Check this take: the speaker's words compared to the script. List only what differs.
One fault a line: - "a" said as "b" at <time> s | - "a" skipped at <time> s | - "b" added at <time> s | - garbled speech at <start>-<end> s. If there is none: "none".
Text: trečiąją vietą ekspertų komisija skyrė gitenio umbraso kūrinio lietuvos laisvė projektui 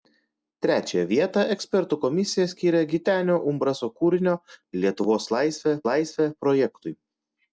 - "laisvė" added at 5.9 s